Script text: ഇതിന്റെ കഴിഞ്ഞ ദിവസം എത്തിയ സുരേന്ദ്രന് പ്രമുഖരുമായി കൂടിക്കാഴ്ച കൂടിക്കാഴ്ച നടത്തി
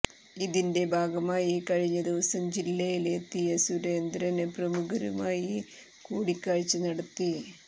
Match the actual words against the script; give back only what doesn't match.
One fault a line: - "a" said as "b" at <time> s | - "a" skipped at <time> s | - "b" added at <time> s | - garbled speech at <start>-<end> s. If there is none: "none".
- "ഭാഗമായി" added at 0.9 s
- "ജില്ലയില്" added at 2.6 s
- "കൂടിക്കാഴ്ച" skipped at 6.8 s